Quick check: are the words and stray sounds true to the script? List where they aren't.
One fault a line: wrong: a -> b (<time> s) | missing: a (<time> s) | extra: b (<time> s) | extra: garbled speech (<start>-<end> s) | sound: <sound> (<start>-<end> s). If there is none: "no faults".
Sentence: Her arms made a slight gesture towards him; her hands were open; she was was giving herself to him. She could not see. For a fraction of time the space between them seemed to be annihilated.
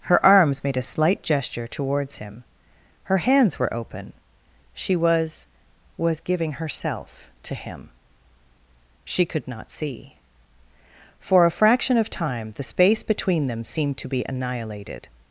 no faults